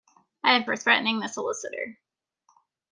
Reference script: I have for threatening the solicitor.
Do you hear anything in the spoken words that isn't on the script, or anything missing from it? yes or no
no